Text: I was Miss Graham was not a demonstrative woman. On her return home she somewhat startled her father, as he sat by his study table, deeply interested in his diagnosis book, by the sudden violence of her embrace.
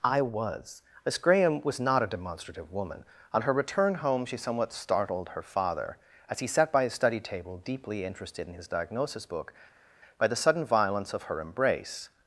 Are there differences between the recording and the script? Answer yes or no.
no